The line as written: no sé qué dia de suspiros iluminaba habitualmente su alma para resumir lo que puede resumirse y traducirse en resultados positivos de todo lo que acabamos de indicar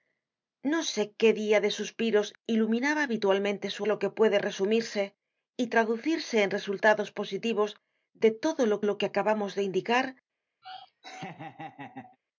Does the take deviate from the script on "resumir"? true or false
true